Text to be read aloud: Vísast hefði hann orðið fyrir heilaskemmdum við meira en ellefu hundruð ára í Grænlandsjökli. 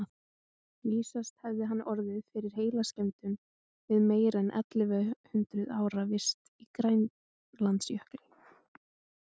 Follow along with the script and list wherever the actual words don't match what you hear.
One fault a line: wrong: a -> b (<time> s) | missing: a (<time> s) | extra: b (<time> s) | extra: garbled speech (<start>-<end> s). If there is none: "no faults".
extra: vist (6.1 s)